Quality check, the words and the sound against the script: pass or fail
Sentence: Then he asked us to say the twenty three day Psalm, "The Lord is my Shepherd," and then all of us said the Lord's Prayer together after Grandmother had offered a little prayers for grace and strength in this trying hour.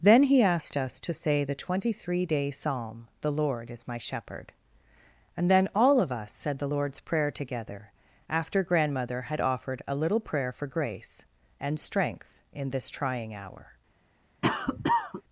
fail